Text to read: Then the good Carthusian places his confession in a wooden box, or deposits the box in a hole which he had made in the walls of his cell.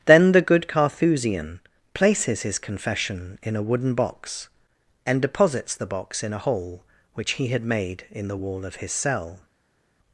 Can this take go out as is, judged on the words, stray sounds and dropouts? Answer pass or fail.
fail